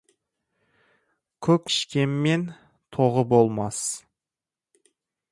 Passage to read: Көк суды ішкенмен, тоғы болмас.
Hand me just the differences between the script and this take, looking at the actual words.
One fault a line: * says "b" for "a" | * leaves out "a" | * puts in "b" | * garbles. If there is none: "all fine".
* leaves out "суды"